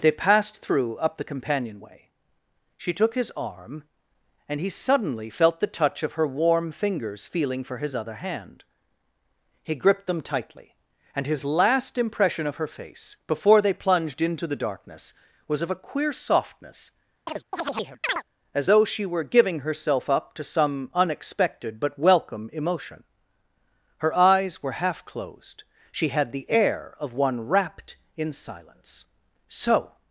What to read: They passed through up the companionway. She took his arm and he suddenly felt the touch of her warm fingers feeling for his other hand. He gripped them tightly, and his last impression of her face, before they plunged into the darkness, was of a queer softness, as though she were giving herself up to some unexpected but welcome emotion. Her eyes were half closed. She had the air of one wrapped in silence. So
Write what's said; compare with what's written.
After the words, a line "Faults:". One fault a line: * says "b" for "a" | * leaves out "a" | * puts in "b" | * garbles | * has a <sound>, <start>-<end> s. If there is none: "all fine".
They passed through up the companionway. She took his arm and he suddenly felt the touch of her warm fingers feeling for his other hand. He gripped them tightly, and his last impression of her face, before they plunged into the darkness, was of a queer softness, as though she were giving herself up to some unexpected but welcome emotion. Her eyes were half closed. She had the air of one wrapped in silence. So
Faults:
* has a chirp, 17.3-18.2 s